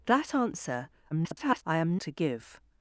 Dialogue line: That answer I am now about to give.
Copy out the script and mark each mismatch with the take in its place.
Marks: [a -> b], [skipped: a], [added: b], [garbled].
That answer [garbled] I am [skipped: now about] to give.